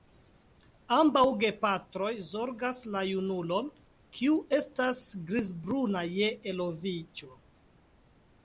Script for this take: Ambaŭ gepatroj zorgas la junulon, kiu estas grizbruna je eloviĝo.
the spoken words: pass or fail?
pass